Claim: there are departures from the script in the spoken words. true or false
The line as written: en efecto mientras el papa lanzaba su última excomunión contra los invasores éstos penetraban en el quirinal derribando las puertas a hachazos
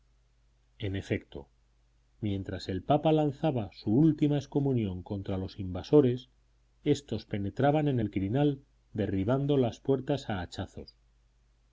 false